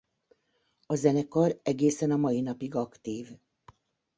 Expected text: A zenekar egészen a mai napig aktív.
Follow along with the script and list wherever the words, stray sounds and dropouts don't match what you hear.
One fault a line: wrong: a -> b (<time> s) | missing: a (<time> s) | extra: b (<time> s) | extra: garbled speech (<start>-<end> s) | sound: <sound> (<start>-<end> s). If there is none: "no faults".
no faults